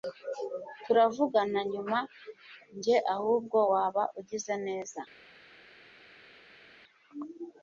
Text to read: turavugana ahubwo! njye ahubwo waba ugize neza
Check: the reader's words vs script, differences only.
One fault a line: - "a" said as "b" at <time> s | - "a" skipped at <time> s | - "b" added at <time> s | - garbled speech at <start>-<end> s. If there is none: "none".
- "ahubwo" said as "nyuma" at 1.7 s